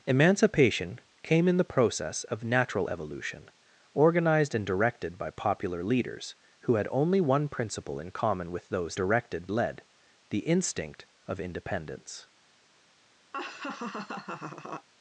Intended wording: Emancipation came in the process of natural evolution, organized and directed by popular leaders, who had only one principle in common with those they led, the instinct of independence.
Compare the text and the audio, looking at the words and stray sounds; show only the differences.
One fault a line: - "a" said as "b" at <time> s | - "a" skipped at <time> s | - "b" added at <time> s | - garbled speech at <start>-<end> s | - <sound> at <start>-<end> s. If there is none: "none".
- "they" said as "directed" at 9.0 s
- laugh at 13.3-14.9 s